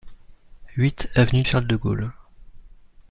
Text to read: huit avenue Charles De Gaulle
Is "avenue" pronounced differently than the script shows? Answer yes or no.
no